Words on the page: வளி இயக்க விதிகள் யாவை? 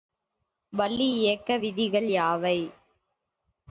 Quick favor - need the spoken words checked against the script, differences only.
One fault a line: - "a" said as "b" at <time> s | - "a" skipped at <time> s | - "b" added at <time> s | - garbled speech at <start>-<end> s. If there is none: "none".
none